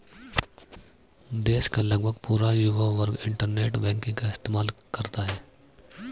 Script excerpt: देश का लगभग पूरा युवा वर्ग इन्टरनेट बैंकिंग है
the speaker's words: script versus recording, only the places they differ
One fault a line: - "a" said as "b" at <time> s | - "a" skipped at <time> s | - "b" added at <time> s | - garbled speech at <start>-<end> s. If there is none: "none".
- "का इस्तेमाल करता" added at 4.2 s